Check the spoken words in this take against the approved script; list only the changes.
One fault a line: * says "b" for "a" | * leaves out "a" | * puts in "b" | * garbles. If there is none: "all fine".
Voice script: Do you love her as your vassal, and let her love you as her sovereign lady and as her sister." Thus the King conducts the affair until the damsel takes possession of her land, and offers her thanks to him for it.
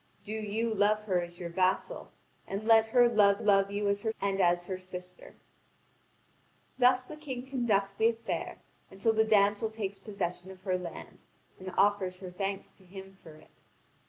* puts in "love"
* leaves out "sovereign lady"